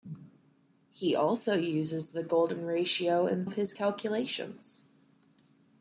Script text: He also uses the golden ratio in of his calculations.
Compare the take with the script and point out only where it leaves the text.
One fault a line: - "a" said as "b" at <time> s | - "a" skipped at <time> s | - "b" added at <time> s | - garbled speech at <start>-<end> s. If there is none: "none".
none